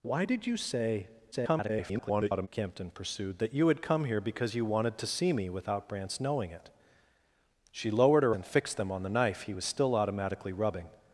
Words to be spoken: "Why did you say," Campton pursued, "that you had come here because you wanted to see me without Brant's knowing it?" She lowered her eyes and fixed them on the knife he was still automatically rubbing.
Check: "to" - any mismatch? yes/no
no